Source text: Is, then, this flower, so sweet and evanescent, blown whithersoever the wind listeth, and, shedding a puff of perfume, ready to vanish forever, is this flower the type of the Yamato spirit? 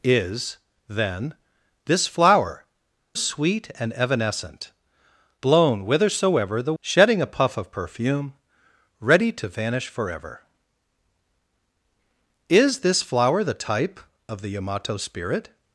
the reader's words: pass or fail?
fail